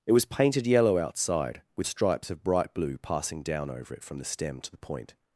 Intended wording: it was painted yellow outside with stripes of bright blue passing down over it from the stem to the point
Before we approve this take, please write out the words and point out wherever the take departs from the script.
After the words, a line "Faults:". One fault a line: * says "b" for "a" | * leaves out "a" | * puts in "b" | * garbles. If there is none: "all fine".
it was painted yellow outside with stripes of bright blue passing down over it from the stem to the point
Faults:
all fine